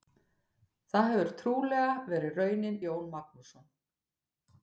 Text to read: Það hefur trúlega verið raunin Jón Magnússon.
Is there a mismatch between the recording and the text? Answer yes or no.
no